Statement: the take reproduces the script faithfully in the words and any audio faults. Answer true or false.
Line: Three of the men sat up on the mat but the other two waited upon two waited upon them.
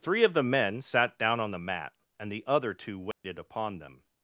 false